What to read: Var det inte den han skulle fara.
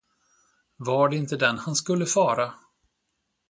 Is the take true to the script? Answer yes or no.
yes